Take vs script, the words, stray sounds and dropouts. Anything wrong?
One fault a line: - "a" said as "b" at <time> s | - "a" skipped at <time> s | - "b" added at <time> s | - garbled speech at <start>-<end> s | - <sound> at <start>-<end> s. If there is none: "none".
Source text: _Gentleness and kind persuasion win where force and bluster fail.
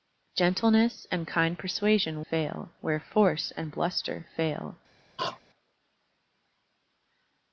- "win" said as "fail" at 2.3 s
- throat clearing at 5.2-5.4 s